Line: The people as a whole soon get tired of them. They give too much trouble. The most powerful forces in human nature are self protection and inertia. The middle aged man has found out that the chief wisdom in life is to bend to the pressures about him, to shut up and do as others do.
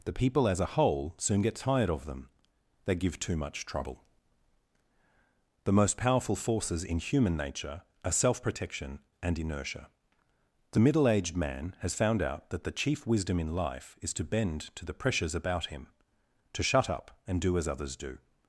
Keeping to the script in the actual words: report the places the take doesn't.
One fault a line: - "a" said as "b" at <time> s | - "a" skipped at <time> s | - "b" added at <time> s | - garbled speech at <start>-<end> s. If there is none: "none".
none